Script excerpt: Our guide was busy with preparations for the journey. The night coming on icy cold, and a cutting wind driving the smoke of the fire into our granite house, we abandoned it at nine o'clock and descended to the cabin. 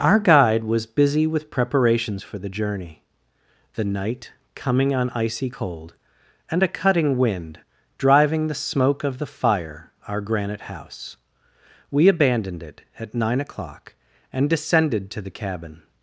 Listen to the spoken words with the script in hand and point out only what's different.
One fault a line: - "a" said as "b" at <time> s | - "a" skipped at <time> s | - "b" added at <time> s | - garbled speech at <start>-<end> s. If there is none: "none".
- "into" skipped at 9.9 s